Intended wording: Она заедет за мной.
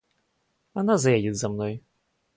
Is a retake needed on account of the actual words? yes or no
no